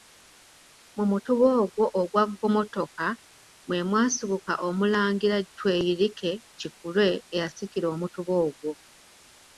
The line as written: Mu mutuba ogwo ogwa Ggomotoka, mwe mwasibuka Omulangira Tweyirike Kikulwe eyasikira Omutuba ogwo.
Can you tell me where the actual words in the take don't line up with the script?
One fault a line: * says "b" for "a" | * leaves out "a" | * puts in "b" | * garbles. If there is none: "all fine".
all fine